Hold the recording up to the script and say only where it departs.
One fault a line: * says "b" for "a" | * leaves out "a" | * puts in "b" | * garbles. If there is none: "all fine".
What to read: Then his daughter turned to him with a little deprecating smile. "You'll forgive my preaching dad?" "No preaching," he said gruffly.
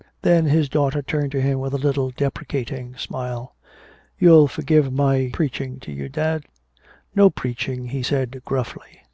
* puts in "to you"